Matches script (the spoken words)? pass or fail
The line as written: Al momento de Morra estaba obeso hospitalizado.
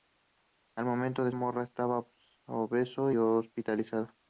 pass